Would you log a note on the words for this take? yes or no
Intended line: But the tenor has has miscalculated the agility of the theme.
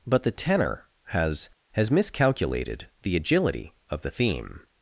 no